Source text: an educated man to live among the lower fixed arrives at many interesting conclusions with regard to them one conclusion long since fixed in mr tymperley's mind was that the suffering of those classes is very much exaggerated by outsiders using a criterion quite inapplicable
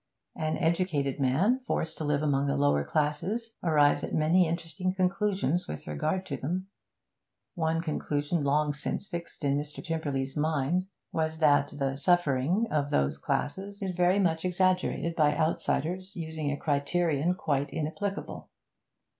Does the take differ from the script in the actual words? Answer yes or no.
yes